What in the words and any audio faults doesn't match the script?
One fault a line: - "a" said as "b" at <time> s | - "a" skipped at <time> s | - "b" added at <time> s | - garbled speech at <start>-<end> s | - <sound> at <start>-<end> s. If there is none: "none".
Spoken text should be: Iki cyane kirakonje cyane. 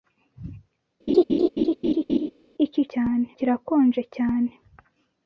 - laugh at 1.1-2.3 s